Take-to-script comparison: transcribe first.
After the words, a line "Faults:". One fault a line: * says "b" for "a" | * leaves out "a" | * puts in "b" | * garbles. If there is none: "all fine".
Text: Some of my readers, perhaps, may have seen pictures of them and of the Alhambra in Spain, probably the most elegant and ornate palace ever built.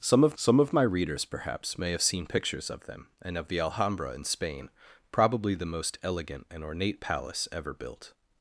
Some of some of my readers, perhaps, may have seen pictures of them and of the Alhambra in Spain, probably the most elegant and ornate palace ever built.
Faults:
* puts in "some of"